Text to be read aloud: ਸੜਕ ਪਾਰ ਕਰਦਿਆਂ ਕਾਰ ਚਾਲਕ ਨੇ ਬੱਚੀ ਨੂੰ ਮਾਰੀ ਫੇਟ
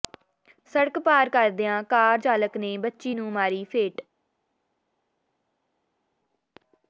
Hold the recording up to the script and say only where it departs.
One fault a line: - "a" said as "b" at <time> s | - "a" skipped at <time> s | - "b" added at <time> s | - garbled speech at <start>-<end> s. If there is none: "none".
none